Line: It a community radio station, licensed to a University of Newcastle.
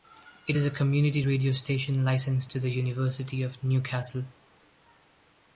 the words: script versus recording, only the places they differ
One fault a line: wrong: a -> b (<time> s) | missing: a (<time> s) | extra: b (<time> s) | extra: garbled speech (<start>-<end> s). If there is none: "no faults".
extra: is (0.5 s)
wrong: a -> the (2.6 s)